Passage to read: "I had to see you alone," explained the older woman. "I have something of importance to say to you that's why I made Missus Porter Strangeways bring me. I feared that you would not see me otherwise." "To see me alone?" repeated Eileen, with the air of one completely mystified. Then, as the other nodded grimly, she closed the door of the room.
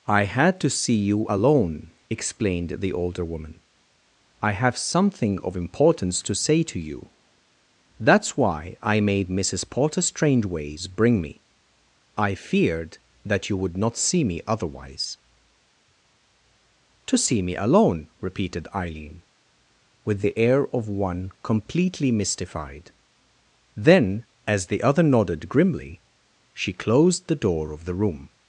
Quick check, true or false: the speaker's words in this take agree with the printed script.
true